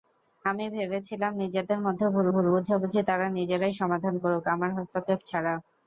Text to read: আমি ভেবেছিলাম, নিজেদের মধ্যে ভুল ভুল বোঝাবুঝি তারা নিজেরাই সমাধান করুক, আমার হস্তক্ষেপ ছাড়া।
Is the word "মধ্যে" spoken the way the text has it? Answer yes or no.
yes